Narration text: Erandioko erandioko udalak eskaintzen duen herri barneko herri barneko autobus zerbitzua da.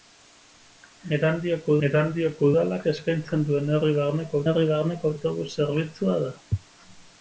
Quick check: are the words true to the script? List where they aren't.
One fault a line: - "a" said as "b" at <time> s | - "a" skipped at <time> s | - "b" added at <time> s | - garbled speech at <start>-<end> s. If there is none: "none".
none